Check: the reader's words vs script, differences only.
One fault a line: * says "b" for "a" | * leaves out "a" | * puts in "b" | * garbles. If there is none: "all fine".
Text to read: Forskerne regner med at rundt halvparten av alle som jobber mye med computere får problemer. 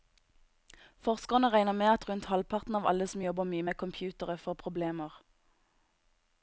all fine